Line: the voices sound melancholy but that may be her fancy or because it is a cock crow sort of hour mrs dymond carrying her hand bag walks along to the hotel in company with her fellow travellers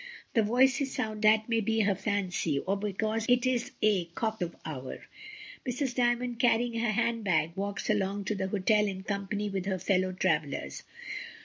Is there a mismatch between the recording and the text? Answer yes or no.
yes